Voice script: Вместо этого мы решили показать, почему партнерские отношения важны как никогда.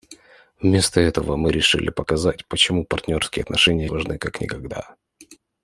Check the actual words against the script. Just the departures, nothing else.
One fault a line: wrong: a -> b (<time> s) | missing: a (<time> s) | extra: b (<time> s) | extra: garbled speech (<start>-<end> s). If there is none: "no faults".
no faults